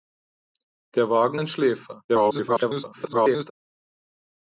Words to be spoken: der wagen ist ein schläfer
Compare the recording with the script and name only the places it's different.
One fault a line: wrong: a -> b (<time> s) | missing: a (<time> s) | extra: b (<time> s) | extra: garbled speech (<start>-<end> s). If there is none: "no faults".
missing: ist (1.4 s)
extra: garbled speech (2.1-3.5 s)